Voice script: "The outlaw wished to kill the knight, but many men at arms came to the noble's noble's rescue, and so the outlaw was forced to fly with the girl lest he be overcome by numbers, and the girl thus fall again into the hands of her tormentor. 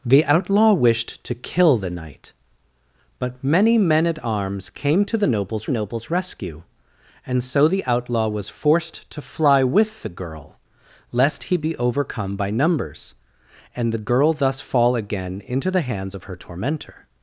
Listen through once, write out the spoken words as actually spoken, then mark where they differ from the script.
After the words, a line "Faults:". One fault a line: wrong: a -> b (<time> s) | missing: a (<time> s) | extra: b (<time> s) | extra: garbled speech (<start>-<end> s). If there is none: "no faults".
"The outlaw wished to kill the knight, but many men at arms came to the noble's noble's rescue, and so the outlaw was forced to fly with the girl lest he be overcome by numbers, and the girl thus fall again into the hands of her tormentor.
Faults:
no faults